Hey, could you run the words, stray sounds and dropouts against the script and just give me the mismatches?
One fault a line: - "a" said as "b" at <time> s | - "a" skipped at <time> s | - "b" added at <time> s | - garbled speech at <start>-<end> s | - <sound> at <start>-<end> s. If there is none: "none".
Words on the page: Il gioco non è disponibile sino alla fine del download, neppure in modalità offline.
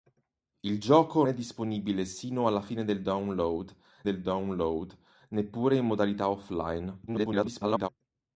- "non" skipped at 1.2 s
- "del download" added at 4.0 s
- garbled speech at 7.1-7.9 s